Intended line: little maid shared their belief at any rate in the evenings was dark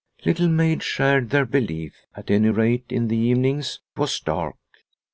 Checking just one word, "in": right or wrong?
right